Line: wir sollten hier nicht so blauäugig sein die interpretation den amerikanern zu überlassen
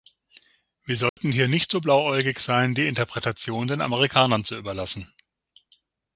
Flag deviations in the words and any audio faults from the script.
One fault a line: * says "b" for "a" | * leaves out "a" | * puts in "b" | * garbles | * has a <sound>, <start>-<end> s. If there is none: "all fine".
* has a dropout, 1.1-1.2 s